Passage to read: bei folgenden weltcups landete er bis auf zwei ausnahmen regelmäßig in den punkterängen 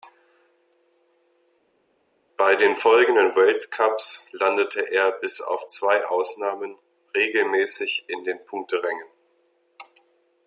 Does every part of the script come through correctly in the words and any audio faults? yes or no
no